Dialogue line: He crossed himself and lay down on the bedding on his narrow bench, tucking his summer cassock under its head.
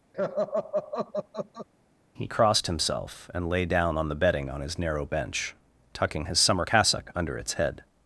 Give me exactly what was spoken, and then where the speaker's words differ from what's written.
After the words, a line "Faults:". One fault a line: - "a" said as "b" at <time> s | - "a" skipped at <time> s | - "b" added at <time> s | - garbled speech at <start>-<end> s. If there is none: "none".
He crossed himself and lay down on the bedding on his narrow bench, tucking his summer cassock under its head.
Faults:
none